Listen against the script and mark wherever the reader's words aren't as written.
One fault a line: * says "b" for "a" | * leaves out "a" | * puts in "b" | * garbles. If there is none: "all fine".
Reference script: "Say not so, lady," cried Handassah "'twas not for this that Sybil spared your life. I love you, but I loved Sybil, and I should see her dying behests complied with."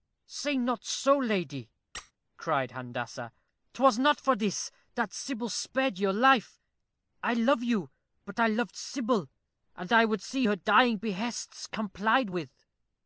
* says "would" for "should"